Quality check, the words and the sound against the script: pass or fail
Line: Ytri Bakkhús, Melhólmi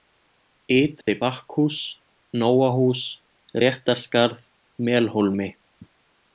fail